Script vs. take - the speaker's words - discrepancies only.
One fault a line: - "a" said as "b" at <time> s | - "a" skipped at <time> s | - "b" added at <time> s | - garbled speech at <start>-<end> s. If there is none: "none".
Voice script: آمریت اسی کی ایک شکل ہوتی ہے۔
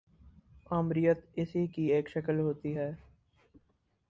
none